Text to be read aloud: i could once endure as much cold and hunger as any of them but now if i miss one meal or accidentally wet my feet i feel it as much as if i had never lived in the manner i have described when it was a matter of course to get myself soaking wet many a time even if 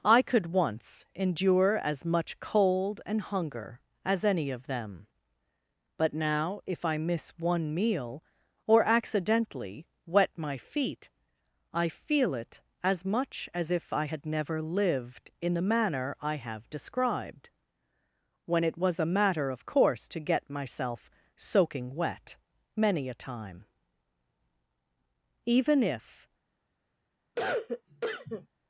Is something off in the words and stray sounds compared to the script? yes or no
yes